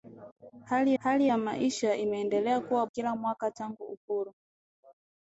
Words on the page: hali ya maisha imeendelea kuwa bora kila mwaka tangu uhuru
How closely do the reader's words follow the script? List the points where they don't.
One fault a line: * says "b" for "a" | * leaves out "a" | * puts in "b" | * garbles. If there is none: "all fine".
* puts in "hali"
* leaves out "bora"